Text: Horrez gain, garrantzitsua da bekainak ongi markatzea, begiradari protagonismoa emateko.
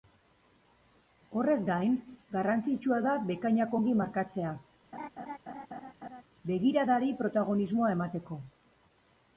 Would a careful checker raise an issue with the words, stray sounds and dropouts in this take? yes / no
yes